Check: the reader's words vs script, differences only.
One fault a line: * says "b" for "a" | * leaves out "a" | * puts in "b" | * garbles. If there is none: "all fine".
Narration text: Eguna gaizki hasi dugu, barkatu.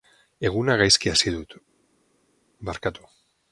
* says "dut" for "dugu"